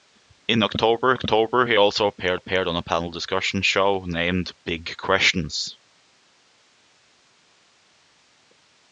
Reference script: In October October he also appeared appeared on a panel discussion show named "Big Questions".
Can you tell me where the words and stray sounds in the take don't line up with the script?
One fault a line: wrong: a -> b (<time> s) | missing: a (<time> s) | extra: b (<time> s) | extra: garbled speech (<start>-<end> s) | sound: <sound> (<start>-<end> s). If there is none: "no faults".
no faults